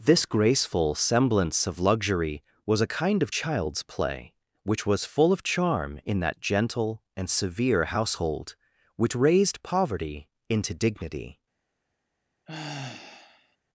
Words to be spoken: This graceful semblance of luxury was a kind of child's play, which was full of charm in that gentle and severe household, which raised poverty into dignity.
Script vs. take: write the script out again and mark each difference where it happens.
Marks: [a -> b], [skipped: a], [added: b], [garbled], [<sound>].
This graceful semblance of luxury was a kind of child's play, which was full of charm in that gentle and severe household, which raised poverty into dignity. [sigh]